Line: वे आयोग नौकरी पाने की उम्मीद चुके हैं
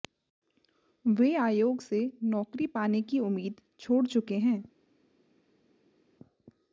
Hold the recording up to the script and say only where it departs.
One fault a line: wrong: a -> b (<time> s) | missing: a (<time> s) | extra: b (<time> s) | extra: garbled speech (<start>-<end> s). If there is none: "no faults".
extra: से (1.8 s)
extra: छोड़ (3.8 s)